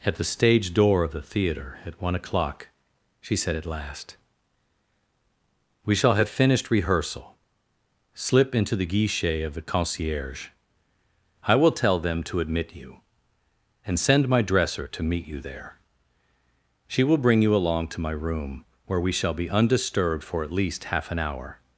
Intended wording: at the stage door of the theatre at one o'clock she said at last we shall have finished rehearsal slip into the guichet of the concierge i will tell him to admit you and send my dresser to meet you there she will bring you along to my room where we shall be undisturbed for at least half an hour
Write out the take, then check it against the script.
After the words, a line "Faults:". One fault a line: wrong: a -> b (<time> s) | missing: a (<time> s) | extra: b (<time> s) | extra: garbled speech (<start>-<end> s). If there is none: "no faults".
at the stage door of the theatre at one o'clock she said at last we shall have finished rehearsal slip into the guichet of the concierge i will tell them to admit you and send my dresser to meet you there she will bring you along to my room where we shall be undisturbed for at least half an hour
Faults:
wrong: him -> them (12.0 s)